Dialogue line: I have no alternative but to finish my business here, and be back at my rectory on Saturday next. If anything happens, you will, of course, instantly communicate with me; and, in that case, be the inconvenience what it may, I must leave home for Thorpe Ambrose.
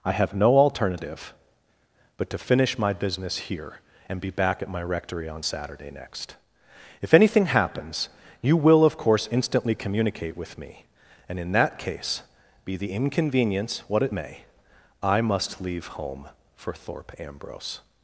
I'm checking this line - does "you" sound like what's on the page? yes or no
yes